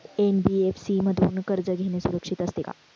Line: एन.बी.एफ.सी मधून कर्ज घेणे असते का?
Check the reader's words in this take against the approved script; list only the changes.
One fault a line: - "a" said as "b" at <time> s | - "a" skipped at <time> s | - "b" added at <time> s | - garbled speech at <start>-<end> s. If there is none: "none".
- "सुरक्षित" added at 2.0 s